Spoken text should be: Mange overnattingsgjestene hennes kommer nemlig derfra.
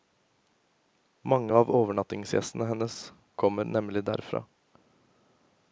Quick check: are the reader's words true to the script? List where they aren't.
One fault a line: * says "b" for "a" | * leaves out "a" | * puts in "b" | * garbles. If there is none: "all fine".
* puts in "av"